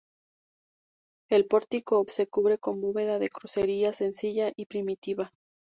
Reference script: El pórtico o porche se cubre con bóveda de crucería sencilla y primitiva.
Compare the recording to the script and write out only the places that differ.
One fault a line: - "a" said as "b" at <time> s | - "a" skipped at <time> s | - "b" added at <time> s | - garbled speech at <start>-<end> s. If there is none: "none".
- "porche" skipped at 2.0 s